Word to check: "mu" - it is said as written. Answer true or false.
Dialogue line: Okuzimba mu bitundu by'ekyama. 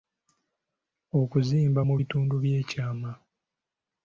true